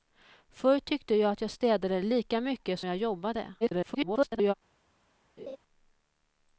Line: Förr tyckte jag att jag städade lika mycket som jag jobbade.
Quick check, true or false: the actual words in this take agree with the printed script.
false